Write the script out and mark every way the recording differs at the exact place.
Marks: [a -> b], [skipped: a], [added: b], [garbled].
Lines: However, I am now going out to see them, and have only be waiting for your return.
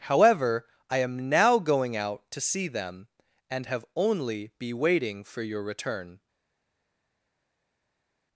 However, I am now going out to see them, and have only be waiting for your return.